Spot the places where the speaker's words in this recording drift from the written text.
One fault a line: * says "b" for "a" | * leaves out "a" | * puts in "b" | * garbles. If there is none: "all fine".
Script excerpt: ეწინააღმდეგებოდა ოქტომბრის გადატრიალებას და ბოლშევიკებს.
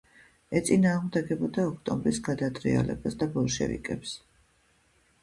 all fine